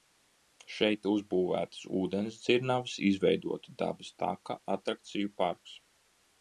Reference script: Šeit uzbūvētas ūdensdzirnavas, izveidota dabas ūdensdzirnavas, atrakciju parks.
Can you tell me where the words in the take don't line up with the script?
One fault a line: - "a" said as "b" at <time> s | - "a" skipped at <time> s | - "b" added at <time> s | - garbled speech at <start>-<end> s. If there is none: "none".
- "ūdensdzirnavas" said as "taka" at 4.2 s